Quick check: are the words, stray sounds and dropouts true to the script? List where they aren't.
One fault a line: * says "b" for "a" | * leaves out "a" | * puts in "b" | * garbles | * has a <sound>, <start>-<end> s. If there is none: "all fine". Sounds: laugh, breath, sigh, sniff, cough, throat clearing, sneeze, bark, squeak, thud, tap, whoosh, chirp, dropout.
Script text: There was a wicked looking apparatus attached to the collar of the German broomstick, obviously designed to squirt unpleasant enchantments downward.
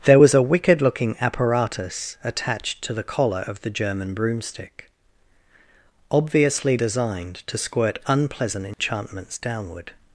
* has a dropout, 8.7-8.8 s